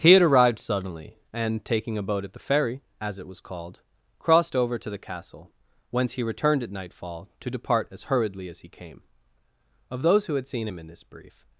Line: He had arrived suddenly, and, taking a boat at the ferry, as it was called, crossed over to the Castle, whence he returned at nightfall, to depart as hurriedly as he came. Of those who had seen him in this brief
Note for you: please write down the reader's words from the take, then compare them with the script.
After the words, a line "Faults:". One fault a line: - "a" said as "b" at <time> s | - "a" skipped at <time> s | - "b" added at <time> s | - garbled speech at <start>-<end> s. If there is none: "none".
He had arrived suddenly, and, taking a boat at the ferry, as it was called, crossed over to the Castle, whence he returned at nightfall, to depart as hurriedly as he came. Of those who had seen him in this brief
Faults:
none